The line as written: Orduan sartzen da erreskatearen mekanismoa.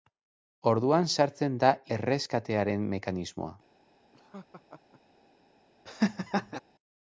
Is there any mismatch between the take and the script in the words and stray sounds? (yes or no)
yes